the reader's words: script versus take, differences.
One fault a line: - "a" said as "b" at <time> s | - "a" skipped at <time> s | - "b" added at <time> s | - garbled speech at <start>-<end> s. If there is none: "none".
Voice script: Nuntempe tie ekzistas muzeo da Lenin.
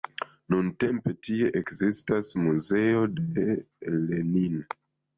- "da" said as "de" at 3.2 s